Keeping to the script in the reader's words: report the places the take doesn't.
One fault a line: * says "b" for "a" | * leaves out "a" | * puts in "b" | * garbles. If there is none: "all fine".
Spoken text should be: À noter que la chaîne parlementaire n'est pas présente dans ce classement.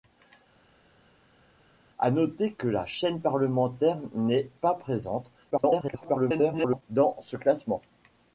* garbles